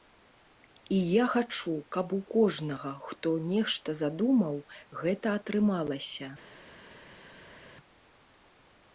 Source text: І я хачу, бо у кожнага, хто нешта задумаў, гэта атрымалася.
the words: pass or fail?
fail